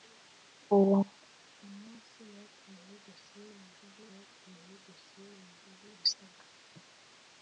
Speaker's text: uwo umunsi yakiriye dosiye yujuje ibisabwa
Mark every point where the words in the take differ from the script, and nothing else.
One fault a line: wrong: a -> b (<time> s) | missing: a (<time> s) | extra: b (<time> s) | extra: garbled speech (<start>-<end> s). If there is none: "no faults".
extra: yakiriye dosiye yujuje (4.1 s)